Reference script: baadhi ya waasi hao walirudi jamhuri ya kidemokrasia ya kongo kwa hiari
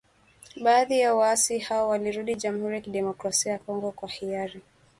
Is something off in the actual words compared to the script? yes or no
no